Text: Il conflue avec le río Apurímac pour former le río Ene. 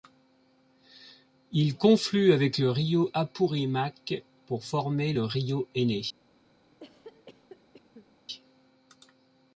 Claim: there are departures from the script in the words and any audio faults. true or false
true